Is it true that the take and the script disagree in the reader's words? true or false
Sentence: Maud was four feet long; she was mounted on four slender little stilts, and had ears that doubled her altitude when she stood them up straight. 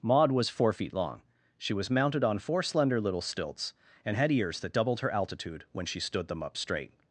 false